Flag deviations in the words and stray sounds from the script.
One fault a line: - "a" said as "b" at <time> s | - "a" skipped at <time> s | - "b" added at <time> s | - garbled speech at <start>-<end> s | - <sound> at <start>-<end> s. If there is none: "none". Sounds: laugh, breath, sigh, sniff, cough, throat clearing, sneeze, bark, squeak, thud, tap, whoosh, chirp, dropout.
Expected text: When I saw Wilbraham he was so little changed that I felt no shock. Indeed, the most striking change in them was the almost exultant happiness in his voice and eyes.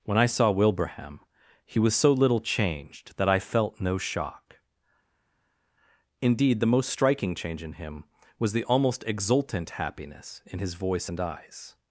- "them" said as "him" at 7.7 s